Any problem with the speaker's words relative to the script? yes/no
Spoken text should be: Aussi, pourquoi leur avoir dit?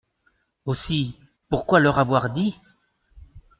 no